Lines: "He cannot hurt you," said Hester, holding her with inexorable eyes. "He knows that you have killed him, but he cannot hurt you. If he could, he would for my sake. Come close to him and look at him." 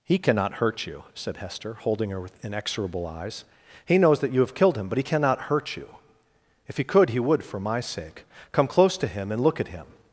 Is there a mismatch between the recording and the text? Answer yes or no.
no